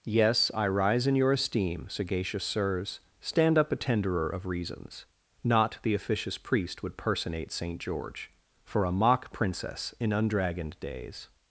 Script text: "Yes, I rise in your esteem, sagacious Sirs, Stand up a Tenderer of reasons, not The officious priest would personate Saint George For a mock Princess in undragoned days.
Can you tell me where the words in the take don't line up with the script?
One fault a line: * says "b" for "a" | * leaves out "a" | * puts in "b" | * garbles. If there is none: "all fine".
all fine